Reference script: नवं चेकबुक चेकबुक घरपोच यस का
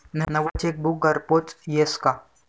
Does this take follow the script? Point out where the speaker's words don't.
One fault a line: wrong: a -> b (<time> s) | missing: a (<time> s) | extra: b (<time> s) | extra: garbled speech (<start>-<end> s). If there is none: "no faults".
missing: चेकबुक (1.1 s)